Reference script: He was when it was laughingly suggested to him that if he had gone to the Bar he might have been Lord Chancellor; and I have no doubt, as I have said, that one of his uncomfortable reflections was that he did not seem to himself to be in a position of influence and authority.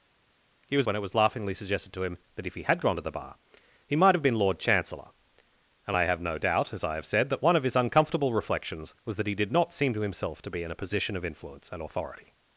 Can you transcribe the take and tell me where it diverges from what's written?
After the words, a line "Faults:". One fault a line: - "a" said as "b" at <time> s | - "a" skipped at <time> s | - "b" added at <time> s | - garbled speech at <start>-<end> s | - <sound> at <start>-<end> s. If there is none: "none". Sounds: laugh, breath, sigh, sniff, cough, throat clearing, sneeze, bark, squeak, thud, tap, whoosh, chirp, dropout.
He was when it was laughingly suggested to him that if he had gone to the Bar he might have been Lord Chancellor; and I have no doubt, as I have said, that one of his uncomfortable reflections was that he did not seem to himself to be in a position of influence and authority.
Faults:
none